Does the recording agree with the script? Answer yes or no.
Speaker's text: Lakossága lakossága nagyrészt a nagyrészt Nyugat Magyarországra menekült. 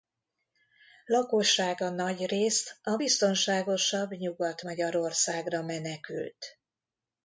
no